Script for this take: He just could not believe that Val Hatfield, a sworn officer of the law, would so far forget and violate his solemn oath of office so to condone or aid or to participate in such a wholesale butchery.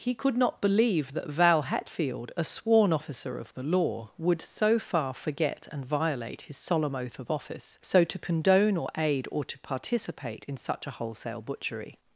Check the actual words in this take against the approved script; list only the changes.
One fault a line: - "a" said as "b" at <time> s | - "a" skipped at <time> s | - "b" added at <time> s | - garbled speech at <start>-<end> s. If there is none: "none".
- "just" skipped at 0.1 s